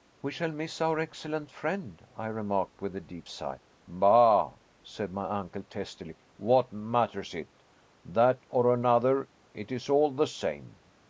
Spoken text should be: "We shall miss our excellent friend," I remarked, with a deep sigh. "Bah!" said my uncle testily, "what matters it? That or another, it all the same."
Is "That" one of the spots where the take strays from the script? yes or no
no